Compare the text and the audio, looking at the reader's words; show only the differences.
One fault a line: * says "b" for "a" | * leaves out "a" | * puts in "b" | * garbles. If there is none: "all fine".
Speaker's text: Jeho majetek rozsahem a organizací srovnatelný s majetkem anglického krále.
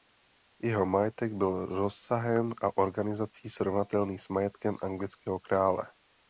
* puts in "byl"